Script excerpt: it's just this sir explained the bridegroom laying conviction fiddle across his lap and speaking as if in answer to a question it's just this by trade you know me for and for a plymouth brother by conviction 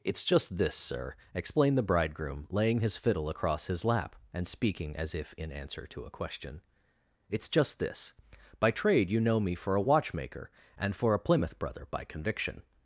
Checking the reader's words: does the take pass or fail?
fail